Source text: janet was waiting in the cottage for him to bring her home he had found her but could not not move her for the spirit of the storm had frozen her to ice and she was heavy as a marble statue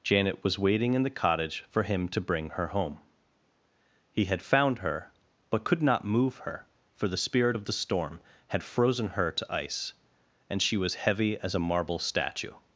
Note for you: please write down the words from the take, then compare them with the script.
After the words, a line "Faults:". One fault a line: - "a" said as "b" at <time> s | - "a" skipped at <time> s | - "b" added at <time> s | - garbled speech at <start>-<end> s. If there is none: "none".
janet was waiting in the cottage for him to bring her home he had found her but could not move her for the spirit of the storm had frozen her to ice and she was heavy as a marble statue
Faults:
- "not" skipped at 6.0 s